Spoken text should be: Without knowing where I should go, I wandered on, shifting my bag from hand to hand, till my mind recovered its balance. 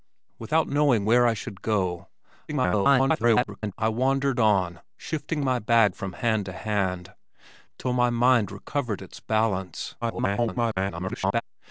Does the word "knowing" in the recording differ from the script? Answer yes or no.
no